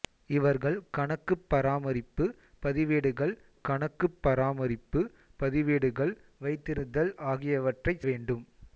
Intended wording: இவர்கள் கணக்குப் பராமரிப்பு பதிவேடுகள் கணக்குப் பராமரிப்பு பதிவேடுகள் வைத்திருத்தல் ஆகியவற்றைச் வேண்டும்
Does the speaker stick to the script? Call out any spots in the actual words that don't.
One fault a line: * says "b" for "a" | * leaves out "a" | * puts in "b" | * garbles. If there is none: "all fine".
all fine